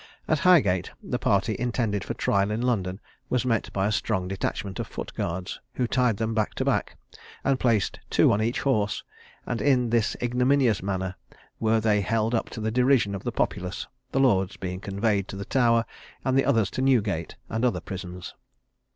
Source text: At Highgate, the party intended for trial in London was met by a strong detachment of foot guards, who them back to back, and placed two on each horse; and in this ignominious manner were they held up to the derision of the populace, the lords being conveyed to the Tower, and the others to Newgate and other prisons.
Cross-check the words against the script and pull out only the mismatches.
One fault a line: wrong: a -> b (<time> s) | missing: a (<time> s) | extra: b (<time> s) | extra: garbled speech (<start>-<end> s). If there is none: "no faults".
extra: tied (5.9 s)